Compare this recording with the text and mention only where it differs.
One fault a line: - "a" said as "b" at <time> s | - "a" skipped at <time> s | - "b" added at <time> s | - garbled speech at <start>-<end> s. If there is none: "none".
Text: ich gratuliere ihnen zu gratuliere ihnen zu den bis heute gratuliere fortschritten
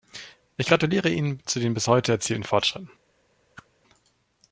- "gratuliere ihnen zu" skipped at 1.6 s
- "gratuliere" said as "erzielten" at 2.1 s